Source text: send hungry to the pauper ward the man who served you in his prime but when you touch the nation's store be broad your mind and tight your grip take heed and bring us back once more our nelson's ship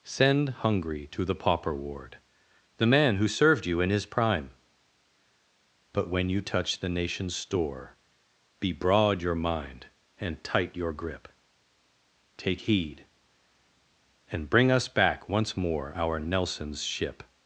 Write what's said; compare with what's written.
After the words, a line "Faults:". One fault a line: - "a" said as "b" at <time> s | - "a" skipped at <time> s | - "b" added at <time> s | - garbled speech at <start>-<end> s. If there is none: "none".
send hungry to the pauper ward the man who served you in his prime but when you touch the nation's store be broad your mind and tight your grip take heed and bring us back once more our nelson's ship
Faults:
none